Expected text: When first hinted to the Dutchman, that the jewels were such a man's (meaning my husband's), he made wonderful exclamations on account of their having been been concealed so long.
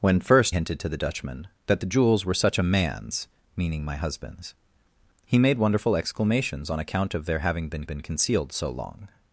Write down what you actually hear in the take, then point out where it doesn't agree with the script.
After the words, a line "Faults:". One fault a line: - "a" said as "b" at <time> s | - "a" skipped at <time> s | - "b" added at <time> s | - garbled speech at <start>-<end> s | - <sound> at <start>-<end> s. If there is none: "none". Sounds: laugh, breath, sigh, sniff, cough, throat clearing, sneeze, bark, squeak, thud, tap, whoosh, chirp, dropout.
When first hinted to the Dutchman, that the jewels were such a man's (meaning my husband's), he made wonderful exclamations on account of their having been been concealed so long.
Faults:
none